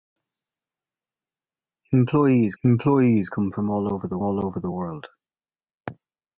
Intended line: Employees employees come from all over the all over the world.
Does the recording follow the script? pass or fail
pass